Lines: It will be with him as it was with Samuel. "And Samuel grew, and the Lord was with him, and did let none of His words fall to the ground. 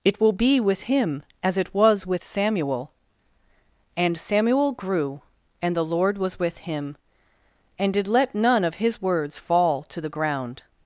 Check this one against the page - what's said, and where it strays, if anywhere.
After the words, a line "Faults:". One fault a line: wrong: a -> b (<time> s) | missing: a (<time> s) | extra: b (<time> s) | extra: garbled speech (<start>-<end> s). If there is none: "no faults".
It will be with him as it was with Samuel. "And Samuel grew, and the Lord was with him, and did let none of His words fall to the ground.
Faults:
no faults